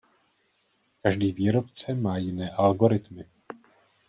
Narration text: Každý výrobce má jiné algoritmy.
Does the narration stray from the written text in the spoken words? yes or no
no